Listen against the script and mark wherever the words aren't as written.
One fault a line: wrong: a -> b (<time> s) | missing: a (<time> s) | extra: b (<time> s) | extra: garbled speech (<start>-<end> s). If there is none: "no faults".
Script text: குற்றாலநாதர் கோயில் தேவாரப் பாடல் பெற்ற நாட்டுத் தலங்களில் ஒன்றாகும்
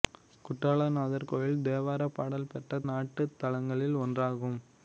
no faults